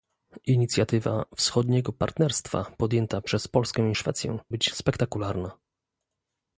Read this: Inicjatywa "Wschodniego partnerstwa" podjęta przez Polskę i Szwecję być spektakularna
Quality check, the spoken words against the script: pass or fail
pass